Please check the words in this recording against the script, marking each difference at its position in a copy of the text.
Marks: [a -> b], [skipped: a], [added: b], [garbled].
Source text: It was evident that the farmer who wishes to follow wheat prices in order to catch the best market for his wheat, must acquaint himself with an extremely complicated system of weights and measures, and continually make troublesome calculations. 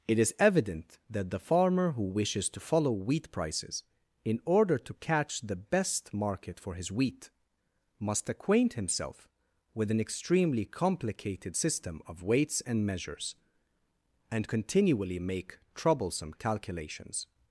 It [was -> is] evident that the farmer who wishes to follow wheat prices in order to catch the best market for his wheat, must acquaint himself with an extremely complicated system of weights and measures, and continually make troublesome calculations.